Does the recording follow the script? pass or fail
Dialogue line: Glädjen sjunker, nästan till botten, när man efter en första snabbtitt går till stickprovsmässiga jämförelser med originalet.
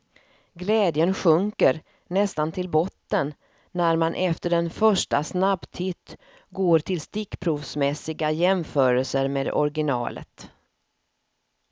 pass